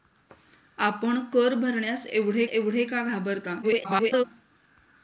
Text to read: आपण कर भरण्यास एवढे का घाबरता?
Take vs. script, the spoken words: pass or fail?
fail